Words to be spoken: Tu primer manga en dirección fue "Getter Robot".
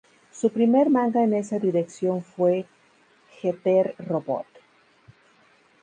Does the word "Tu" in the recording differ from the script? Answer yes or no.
yes